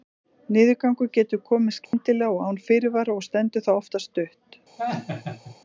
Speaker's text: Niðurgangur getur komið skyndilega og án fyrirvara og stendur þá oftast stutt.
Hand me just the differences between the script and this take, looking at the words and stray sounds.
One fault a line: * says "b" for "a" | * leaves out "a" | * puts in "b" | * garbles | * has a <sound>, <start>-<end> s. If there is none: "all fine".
* has a dropout, 1.9-1.9 s
* has a laugh, 4.8-5.6 s